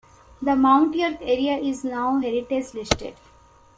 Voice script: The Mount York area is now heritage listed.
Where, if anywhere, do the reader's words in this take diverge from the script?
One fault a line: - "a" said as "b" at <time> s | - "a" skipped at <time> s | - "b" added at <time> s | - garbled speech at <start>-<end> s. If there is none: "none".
none